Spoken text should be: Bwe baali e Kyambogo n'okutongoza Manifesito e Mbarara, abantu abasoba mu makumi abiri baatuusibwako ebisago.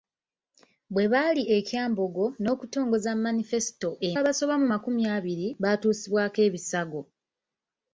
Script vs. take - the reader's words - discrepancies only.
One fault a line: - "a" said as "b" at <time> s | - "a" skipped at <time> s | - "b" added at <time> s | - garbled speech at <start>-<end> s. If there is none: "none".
- "Mbarara abantu" skipped at 4.1 s